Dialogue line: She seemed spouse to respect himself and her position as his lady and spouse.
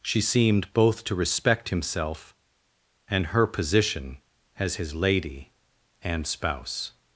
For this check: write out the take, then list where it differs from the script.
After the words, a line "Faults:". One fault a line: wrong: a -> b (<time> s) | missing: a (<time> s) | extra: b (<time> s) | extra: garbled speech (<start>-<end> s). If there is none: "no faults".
She seemed both to respect himself and her position as his lady and spouse.
Faults:
wrong: spouse -> both (0.7 s)